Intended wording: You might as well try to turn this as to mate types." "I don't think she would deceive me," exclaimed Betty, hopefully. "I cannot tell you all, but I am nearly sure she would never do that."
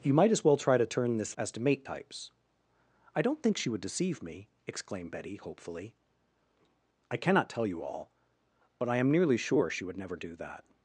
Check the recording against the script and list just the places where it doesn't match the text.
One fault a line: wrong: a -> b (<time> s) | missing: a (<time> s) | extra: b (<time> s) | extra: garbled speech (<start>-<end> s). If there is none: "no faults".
no faults